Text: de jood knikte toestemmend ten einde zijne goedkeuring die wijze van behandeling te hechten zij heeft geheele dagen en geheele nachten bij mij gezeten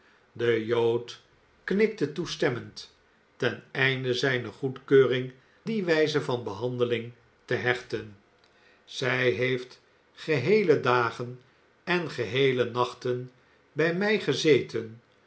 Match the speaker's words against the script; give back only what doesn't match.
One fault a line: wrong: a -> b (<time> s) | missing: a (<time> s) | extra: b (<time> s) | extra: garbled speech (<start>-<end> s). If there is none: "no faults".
no faults